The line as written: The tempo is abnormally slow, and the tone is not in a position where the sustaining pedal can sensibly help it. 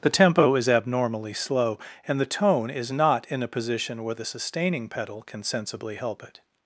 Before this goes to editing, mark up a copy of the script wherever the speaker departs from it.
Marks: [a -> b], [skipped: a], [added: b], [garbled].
The tempo is abnormally slow, and the tone is not in a position where the sustaining pedal can sensibly help it.